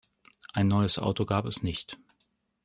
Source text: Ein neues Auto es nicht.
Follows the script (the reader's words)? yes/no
no